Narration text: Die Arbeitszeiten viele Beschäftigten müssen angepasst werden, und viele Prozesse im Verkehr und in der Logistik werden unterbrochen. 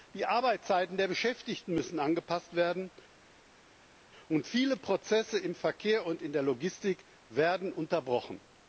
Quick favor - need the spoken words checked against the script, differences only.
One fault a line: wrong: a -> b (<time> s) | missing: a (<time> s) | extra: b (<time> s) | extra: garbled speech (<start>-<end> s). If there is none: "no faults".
wrong: viele -> der (1.0 s)